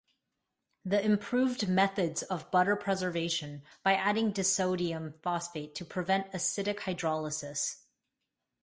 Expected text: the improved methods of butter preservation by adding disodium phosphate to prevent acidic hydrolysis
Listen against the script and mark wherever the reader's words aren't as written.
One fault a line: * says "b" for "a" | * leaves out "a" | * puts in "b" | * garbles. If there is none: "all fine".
all fine